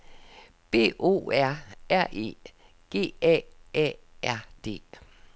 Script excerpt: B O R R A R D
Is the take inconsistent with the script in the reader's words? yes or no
yes